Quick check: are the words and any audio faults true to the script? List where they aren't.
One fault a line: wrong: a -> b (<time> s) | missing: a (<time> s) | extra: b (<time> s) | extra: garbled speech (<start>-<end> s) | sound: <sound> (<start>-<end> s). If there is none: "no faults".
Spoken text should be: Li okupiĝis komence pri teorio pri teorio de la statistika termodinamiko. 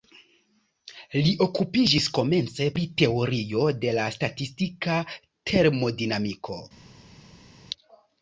missing: pri teorio (3.7 s)